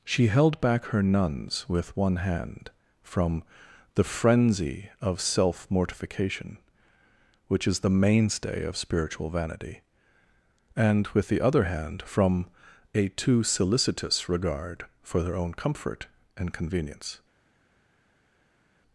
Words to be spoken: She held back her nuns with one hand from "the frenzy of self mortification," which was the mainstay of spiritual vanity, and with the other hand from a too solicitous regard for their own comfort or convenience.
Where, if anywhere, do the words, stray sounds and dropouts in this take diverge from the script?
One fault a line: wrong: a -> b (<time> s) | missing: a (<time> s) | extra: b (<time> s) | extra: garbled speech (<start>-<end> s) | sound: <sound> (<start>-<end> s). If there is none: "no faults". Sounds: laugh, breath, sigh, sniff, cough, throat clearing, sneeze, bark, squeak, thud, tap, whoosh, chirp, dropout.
wrong: was -> is (7.7 s)
wrong: or -> and (16.4 s)